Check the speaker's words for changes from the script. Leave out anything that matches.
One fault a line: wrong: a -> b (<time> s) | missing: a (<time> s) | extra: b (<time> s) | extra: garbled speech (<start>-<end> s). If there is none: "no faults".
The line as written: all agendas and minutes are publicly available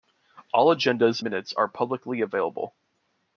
missing: and (1.2 s)